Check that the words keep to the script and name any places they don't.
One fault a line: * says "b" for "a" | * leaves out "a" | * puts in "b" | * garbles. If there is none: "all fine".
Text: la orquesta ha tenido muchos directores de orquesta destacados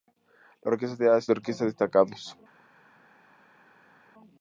* leaves out "tenido muchos directores"